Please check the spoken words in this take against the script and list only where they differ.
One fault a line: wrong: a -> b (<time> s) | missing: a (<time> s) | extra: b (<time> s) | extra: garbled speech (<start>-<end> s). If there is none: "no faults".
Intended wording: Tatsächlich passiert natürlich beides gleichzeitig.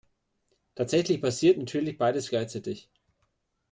no faults